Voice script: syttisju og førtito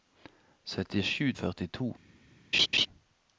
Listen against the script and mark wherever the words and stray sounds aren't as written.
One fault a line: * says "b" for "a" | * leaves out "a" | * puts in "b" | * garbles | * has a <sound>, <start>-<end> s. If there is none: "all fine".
* has a laugh, 2.5-2.9 s